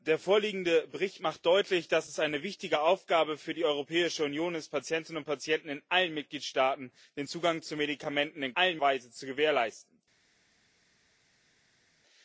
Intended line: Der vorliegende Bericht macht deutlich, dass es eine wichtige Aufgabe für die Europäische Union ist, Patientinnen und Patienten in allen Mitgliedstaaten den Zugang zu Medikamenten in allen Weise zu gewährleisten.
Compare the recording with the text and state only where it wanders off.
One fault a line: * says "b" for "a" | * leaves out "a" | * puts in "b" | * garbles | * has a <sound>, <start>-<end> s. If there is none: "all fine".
all fine